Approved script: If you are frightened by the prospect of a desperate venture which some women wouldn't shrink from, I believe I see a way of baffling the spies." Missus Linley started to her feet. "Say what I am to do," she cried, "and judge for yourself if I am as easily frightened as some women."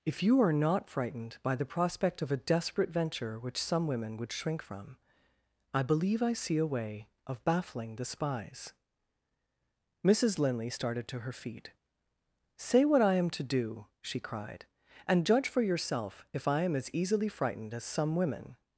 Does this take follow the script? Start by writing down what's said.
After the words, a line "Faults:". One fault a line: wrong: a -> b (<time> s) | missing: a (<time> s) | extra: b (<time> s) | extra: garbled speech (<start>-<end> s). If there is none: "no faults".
If you are not frightened by the prospect of a desperate venture which some women would shrink from, I believe I see a way of baffling the spies." Missus Linley started to her feet. "Say what I am to do," she cried, "and judge for yourself if I am as easily frightened as some women."
Faults:
extra: not (0.5 s)
wrong: wouldn't -> would (4.2 s)